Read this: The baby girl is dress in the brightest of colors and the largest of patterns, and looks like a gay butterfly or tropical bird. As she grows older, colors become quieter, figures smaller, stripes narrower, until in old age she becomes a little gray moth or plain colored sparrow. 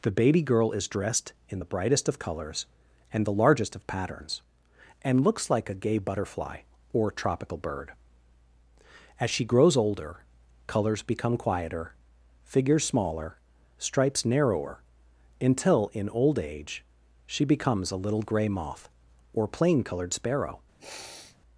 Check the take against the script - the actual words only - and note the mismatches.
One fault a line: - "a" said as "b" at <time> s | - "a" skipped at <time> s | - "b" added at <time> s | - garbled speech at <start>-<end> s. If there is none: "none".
- "dress" said as "dressed" at 0.9 s